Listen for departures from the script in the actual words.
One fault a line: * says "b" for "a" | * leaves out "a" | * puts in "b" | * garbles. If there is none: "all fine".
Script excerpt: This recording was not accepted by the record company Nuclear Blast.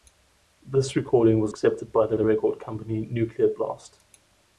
* leaves out "not"
* puts in "the"